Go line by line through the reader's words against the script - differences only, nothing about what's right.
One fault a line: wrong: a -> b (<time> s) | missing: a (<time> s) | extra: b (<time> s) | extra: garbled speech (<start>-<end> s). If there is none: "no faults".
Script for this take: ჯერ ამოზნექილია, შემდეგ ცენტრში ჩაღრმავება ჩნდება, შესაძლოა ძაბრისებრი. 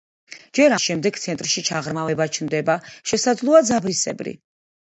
missing: ამოზნექილია (0.7 s)